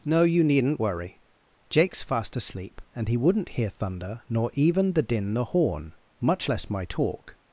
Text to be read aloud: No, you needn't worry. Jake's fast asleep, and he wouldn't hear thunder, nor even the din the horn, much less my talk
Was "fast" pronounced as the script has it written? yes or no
yes